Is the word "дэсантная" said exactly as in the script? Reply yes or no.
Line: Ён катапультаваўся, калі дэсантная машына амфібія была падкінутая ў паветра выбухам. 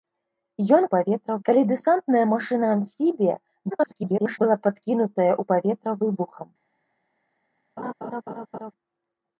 yes